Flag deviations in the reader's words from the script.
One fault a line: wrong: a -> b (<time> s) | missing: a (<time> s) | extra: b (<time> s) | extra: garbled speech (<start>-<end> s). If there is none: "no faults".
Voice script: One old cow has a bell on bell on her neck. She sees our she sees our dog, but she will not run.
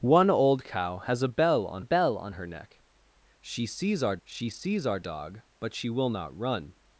no faults